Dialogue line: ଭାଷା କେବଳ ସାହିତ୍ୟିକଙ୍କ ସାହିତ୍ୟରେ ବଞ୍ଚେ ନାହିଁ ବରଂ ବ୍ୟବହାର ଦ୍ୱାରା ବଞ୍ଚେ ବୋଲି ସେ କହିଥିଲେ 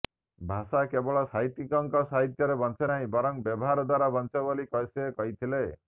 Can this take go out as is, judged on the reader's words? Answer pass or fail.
pass